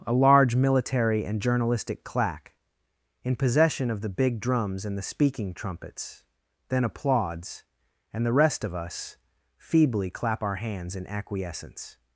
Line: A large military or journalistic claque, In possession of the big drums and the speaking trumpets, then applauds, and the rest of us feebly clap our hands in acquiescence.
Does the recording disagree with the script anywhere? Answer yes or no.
yes